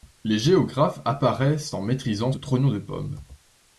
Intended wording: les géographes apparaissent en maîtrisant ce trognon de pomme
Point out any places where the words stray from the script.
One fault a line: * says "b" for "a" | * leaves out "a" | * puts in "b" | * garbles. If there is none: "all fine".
* leaves out "ce"